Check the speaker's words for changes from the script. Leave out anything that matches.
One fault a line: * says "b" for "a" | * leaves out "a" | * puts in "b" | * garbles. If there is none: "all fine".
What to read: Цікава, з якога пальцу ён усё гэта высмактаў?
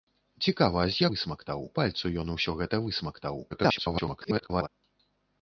* says "высмактаў" for "якога"
* garbles